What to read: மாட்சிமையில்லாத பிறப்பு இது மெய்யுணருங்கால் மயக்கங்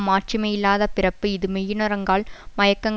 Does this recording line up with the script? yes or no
yes